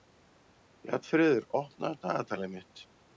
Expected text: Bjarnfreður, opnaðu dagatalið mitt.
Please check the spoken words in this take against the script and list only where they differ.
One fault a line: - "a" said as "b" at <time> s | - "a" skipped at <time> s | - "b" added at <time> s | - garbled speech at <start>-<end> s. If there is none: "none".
none